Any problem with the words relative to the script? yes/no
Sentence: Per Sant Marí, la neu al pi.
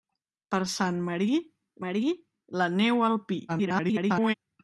yes